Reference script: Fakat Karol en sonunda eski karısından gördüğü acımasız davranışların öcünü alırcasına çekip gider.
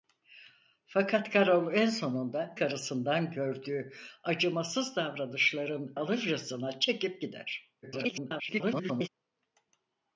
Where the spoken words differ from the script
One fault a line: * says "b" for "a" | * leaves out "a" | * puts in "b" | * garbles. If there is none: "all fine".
* leaves out "eski"
* leaves out "öcünü"
* garbles